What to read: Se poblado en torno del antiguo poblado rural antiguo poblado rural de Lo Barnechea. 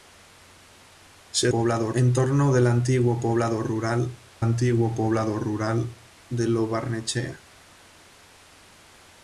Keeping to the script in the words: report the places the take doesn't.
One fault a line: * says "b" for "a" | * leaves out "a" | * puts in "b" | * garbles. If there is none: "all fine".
all fine